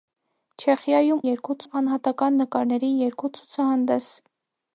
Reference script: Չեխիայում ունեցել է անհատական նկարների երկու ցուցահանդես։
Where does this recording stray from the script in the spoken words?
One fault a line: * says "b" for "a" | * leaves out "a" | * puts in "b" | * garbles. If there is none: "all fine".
* says "երկու" for "ունեցել"